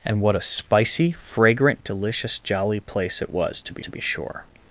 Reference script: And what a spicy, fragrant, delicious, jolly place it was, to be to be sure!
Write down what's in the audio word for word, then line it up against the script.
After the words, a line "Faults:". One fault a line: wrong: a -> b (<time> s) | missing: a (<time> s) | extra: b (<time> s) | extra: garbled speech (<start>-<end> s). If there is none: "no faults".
And what a spicy, fragrant, delicious, jolly place it was, to be to be sure!
Faults:
no faults